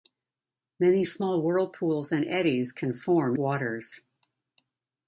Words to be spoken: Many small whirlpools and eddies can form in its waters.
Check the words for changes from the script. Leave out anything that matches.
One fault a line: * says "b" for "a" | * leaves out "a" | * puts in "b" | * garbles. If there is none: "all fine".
* leaves out "in its"